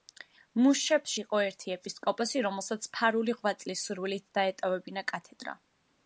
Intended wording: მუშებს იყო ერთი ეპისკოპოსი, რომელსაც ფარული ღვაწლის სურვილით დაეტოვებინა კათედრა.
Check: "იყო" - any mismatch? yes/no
no